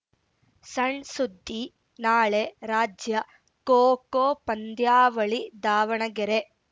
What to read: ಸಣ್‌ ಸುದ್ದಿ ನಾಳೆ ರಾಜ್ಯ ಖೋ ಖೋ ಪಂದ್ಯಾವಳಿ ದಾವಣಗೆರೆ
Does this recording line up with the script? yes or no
yes